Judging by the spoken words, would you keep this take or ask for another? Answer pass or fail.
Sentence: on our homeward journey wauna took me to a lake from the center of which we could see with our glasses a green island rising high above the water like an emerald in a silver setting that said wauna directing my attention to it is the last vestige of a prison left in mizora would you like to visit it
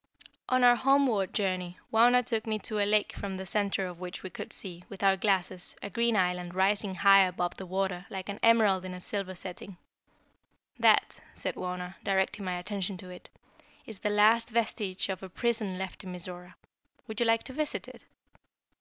pass